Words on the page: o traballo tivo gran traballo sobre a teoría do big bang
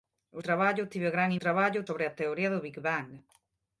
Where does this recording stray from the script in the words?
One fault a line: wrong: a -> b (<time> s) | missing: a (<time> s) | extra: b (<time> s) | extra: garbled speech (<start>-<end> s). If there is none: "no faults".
no faults